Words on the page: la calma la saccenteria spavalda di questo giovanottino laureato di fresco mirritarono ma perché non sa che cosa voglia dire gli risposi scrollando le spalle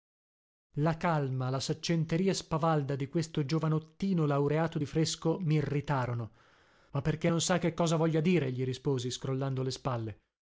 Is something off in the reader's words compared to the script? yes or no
no